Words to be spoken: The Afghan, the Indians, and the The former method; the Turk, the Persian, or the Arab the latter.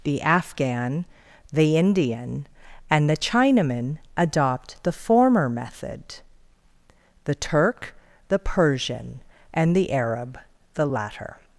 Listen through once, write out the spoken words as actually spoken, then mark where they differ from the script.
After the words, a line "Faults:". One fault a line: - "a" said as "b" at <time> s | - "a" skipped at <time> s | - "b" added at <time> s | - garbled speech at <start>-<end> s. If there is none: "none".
The Afghan, the Indian, and the Chinaman adopt the former method; the Turk, the Persian, and the Arab the latter.
Faults:
- "Indians" said as "Indian" at 1.8 s
- "Chinaman adopt" added at 3.2 s
- "or" said as "and" at 9.5 s